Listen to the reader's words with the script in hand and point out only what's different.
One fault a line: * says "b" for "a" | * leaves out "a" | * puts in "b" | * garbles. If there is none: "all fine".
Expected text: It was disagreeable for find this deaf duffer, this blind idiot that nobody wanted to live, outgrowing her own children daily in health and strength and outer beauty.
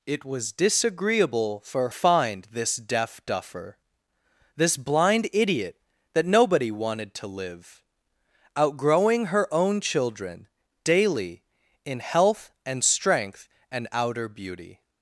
all fine